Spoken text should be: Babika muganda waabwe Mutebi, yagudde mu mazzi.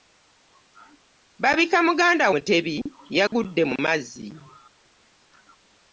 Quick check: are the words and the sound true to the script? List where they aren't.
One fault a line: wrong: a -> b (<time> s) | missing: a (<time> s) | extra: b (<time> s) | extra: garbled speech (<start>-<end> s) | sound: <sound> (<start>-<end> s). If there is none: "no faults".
missing: waabwe (2.2 s)
sound: dropout (3.3-3.3 s)